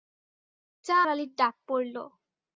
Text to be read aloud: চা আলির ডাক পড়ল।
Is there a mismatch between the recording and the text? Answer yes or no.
no